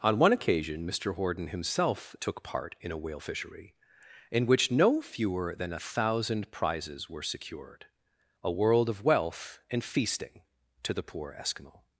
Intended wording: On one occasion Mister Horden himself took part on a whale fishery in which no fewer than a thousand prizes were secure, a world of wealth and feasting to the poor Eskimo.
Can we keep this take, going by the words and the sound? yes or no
no